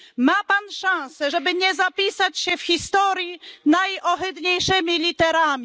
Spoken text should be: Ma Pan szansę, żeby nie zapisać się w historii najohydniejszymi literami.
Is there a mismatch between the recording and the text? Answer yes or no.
no